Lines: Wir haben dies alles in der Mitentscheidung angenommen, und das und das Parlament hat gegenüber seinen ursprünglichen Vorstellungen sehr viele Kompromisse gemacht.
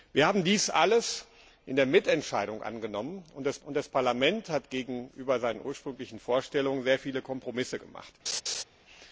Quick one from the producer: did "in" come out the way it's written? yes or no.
yes